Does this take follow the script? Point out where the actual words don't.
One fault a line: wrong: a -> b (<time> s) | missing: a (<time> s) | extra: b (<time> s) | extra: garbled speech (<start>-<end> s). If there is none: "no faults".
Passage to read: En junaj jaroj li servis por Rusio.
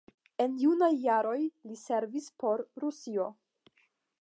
no faults